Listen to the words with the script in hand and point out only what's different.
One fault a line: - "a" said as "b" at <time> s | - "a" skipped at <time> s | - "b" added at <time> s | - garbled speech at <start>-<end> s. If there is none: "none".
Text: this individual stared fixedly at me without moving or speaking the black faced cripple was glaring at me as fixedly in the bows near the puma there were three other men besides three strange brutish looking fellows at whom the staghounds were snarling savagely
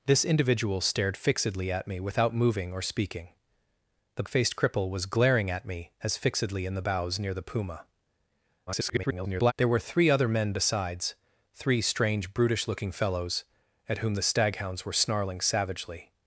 - "black" skipped at 4.2 s
- garbled speech at 8.7-9.5 s